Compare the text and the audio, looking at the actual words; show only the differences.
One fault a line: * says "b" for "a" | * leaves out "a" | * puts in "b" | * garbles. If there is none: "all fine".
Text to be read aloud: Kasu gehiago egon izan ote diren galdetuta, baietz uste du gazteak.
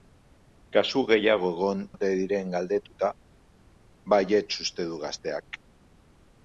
* leaves out "izan"